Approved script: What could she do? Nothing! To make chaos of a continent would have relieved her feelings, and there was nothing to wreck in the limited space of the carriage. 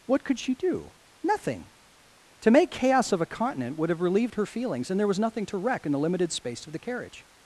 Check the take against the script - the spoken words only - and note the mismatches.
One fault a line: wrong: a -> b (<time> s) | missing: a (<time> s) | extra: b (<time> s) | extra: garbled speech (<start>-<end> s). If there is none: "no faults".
no faults